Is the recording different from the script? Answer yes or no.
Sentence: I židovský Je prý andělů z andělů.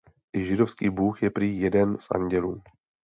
yes